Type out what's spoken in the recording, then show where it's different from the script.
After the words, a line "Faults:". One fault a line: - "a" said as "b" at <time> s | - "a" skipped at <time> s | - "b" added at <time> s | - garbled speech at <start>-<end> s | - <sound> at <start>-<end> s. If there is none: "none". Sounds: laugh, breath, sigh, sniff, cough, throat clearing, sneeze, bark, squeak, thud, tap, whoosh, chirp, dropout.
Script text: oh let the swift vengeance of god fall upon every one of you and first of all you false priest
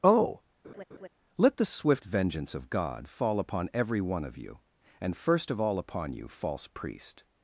oh let the swift vengeance of god fall upon every one of you and first of all upon you false priest
Faults:
- laugh at 0.6-1.1 s
- "upon" added at 5.8 s